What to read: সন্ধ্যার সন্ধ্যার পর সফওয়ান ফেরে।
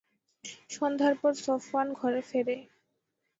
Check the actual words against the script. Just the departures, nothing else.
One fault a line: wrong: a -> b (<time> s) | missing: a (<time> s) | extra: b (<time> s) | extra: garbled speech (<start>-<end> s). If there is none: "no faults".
missing: সন্ধ্যার (1.1 s)
extra: ঘরে (1.9 s)